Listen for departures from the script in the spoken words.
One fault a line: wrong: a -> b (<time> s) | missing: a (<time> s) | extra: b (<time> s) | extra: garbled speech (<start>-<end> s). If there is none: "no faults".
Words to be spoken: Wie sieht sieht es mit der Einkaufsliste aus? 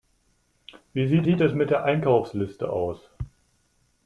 no faults